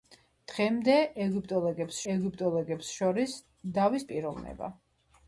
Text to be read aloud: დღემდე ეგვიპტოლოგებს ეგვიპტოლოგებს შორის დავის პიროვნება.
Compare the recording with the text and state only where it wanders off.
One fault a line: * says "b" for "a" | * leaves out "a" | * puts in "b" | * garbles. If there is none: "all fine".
all fine